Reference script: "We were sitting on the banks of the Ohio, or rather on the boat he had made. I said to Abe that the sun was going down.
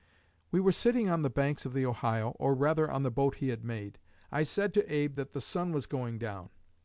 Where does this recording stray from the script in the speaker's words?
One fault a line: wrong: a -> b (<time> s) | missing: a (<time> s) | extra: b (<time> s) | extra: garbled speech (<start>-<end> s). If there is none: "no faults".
no faults